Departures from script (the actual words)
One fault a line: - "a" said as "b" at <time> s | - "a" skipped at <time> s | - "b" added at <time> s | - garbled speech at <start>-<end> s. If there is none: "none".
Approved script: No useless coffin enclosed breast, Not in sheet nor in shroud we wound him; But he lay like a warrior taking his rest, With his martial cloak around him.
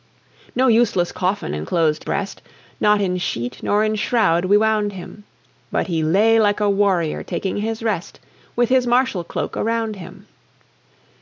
none